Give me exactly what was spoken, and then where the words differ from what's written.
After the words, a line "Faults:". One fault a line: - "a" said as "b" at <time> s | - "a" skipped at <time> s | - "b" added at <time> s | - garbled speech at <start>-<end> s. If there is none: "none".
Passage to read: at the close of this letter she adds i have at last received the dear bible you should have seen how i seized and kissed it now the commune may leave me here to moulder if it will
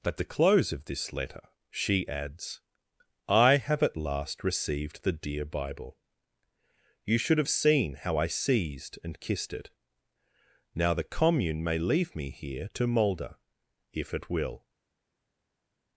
at the close of this letter she adds i have at last received the dear bible you should have seen how i seized and kissed it now the commune may leave me here to moulder if it will
Faults:
none